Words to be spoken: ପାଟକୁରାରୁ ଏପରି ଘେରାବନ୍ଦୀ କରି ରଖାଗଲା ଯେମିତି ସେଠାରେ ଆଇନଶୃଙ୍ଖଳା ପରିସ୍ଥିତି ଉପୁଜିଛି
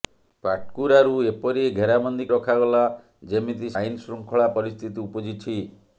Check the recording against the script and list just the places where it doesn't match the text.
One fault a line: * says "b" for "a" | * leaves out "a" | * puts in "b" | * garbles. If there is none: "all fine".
* leaves out "କରି"
* leaves out "ସେଠାରେ"